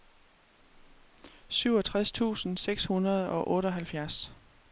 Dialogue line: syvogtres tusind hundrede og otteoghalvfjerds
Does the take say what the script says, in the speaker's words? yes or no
no